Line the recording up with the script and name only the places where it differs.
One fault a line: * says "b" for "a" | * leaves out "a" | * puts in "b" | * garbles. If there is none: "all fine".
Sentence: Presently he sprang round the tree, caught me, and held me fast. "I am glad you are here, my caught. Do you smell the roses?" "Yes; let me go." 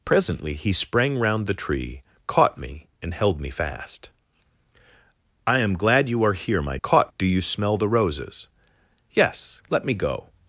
all fine